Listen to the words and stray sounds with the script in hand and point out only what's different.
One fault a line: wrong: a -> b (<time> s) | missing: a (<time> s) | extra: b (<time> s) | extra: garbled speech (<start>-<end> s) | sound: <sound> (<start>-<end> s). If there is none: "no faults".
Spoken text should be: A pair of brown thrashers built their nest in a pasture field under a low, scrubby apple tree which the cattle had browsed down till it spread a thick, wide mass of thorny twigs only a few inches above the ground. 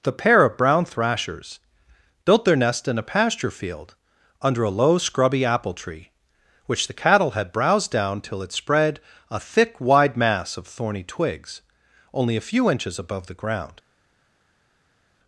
wrong: A -> The (0.0 s)